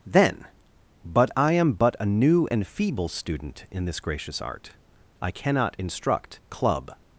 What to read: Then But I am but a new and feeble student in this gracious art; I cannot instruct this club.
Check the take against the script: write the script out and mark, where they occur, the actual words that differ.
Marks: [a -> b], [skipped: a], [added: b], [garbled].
Then But I am but a new and feeble student in this gracious art; I cannot instruct [skipped: this] club.